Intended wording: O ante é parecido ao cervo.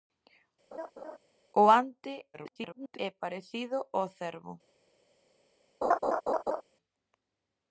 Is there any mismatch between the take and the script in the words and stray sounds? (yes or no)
yes